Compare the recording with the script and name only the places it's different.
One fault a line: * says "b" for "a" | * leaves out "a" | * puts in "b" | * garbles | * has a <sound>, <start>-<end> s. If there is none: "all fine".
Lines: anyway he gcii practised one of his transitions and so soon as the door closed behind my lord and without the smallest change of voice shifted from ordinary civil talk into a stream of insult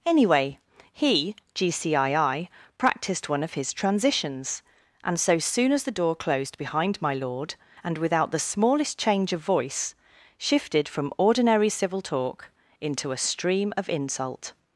all fine